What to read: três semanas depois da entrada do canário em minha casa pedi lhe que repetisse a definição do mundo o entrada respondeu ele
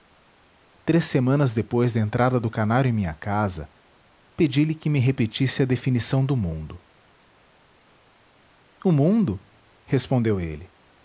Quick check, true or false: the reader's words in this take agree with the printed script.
false